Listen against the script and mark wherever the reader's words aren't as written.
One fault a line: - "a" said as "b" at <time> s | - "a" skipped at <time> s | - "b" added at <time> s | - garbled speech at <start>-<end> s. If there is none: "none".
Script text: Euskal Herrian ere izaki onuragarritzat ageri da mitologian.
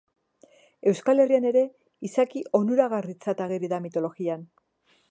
none